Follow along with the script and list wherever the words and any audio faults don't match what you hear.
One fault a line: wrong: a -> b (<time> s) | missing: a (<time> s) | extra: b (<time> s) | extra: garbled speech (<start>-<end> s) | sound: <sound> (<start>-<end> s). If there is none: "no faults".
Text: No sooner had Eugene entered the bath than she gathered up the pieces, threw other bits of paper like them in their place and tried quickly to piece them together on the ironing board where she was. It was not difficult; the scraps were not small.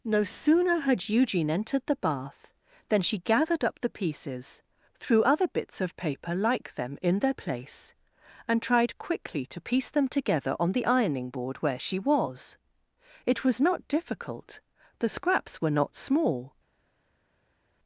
no faults